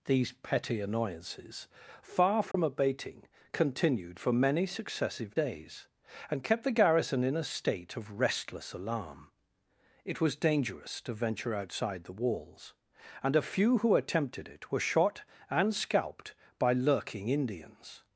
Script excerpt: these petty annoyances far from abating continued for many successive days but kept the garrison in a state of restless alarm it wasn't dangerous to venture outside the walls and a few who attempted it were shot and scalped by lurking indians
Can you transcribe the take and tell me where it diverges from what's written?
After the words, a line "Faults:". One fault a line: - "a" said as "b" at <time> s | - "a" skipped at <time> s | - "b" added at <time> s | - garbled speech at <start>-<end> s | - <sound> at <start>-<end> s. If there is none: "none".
these petty annoyances far from abating continued for many successive days and kept the garrison in a state of restless alarm it was dangerous to venture outside the walls and a few who attempted it were shot and scalped by lurking indians
Faults:
- dropout at 2.5-2.5 s
- "but" said as "and" at 6.3 s
- "wasn't" said as "was" at 10.2 s